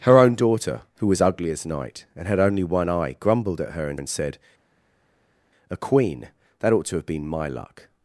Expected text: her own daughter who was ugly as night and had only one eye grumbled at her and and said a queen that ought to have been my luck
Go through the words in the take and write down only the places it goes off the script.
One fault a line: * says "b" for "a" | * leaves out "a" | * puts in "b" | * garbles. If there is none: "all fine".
all fine